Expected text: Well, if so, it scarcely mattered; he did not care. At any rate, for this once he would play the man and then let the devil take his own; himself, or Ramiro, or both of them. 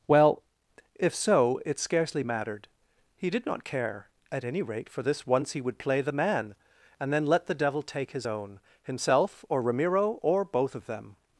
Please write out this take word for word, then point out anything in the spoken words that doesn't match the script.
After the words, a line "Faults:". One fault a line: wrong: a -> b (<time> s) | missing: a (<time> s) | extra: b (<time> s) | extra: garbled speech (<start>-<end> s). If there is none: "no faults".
Well, if so, it scarcely mattered; he did not care. At any rate, for this once he would play the man and then let the devil take his own; himself, or Ramiro, or both of them.
Faults:
no faults